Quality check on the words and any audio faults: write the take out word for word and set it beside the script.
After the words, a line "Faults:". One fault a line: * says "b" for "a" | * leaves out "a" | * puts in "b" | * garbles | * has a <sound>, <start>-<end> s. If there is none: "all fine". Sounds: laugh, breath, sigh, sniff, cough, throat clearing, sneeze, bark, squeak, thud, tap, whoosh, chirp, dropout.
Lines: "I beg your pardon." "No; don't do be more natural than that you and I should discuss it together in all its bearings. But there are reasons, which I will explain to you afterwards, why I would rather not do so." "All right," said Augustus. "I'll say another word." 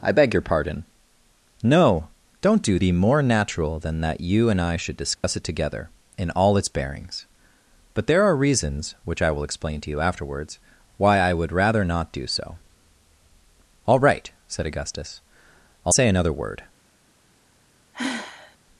"I beg your pardon." "No; don't do be more natural than that you and I should discuss it together in all its bearings. But there are reasons, which I will explain to you afterwards, why I would rather not do so." "All right," said Augustus. "I'll say another word."
Faults:
* has a dropout, 5.2-5.2 s
* has a sigh, 17.9-18.6 s